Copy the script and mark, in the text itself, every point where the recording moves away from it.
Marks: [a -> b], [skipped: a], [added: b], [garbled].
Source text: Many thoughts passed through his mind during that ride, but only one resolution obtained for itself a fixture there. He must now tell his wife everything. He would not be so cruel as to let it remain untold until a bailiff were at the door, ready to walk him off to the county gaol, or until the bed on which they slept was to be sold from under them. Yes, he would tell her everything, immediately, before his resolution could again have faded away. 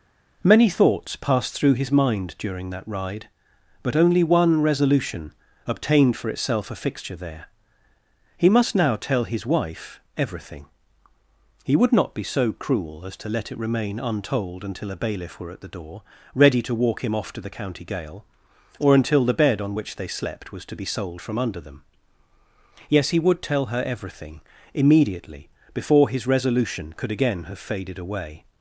Many thoughts passed through his mind during that ride, but only one resolution obtained for itself a fixture there. He must now tell his wife everything. He would not be so cruel as to let it remain untold until a bailiff were at the door, ready to walk him off to the county gaol, or until the bed on which they slept was to be sold from under them. Yes, he would tell her everything, immediately, before his resolution could again have faded away.